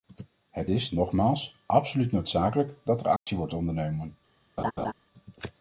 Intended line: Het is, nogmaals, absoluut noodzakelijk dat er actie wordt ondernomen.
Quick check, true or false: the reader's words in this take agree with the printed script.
true